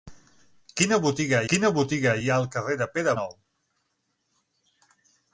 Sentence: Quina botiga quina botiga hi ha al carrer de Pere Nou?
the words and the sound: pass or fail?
pass